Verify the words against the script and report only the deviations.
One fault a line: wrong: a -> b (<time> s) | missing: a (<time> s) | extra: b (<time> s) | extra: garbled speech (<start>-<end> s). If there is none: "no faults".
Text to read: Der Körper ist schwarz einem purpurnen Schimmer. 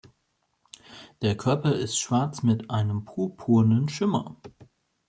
extra: mit (2.4 s)